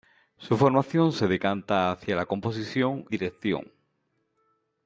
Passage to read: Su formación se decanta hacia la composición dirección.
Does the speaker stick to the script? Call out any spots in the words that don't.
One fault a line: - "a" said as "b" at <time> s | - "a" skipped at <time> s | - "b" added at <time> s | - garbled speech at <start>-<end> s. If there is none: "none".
none